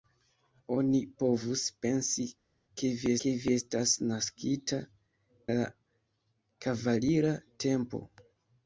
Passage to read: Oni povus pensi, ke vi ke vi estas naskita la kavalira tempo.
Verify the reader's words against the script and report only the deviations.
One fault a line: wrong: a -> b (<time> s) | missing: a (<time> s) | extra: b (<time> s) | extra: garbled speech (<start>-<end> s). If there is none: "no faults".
no faults